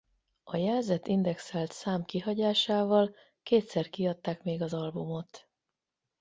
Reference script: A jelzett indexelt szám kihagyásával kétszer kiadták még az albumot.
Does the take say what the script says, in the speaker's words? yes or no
yes